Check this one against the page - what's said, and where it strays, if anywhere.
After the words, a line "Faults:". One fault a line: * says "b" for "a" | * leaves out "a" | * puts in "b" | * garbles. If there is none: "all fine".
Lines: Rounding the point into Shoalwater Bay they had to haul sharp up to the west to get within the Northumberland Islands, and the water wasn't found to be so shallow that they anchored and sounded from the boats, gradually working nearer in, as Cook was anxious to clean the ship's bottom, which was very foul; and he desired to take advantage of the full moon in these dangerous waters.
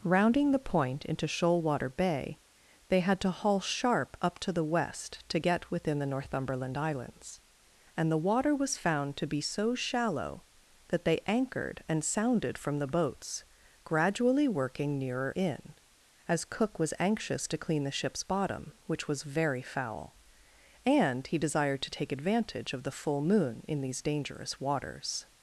Rounding the point into Shoalwater Bay they had to haul sharp up to the west to get within the Northumberland Islands, and the water was found to be so shallow that they anchored and sounded from the boats, gradually working nearer in, as Cook was anxious to clean the ship's bottom, which was very foul; and he desired to take advantage of the full moon in these dangerous waters.
Faults:
* says "was" for "wasn't"